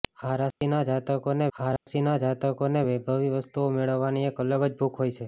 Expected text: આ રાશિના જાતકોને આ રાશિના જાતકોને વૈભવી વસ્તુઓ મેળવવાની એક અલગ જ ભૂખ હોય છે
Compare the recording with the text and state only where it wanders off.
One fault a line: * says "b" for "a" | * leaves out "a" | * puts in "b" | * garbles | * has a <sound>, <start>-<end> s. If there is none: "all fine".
* has a dropout, 0.5-0.6 s
* has a dropout, 1.8-1.9 s